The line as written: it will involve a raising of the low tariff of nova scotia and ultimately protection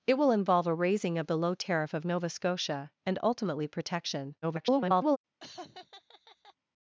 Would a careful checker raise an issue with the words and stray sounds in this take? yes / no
yes